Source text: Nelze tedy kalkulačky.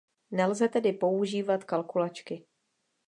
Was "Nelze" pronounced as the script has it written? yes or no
yes